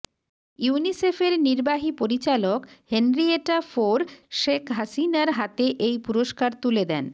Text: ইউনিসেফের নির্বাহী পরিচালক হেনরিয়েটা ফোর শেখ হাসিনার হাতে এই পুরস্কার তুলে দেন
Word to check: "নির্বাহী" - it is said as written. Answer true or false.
true